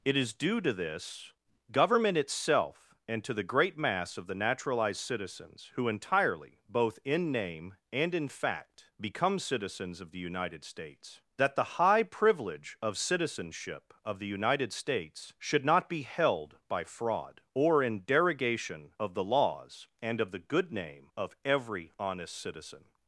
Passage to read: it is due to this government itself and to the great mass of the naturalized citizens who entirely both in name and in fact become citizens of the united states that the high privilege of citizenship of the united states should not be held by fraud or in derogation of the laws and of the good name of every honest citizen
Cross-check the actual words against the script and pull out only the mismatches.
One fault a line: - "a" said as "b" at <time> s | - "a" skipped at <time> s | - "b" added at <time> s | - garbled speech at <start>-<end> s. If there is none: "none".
none